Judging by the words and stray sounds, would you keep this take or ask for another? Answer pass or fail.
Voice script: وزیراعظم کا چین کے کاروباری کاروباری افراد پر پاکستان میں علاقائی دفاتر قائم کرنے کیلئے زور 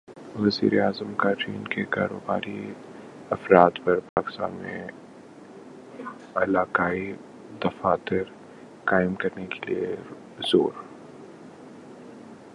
fail